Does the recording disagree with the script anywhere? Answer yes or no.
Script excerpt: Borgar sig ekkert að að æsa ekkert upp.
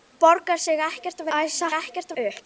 no